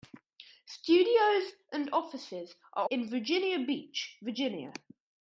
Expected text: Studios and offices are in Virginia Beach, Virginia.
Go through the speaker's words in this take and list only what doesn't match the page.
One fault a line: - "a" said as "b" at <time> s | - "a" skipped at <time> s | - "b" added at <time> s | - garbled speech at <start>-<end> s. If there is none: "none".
none